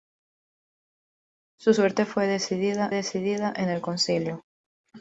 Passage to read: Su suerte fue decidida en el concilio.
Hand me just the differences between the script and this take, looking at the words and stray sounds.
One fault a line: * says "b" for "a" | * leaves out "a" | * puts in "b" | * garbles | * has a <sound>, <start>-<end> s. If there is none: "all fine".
* puts in "decidida"